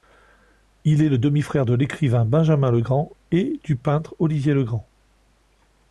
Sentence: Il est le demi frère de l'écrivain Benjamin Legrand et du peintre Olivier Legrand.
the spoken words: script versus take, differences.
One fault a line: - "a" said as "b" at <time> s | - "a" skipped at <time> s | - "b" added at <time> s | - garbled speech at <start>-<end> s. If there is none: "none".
none